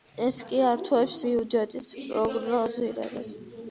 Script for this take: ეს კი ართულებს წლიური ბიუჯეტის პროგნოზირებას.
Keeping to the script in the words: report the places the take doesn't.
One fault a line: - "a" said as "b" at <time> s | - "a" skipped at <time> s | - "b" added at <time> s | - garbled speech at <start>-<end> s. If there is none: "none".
- "წლიური" skipped at 1.2 s